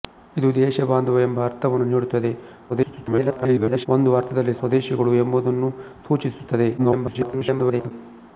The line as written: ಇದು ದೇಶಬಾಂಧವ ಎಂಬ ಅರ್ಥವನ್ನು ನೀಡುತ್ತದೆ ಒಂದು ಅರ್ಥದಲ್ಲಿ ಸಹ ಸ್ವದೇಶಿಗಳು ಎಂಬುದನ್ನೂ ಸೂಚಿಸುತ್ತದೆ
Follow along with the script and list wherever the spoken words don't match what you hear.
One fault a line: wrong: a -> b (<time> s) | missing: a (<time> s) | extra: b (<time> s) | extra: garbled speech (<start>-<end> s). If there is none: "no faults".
extra: garbled speech (2.7-3.9 s)
missing: ಸಹ (4.6 s)
extra: garbled speech (6.8-7.9 s)